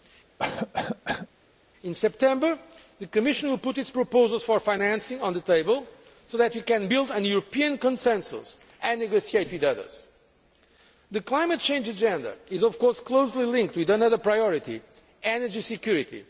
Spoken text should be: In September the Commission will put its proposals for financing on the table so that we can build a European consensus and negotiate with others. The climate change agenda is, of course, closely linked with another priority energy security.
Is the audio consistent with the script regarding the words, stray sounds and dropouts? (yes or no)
no